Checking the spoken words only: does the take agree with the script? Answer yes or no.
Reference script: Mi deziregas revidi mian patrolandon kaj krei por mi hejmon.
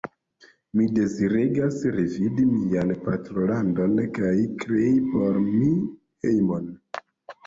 yes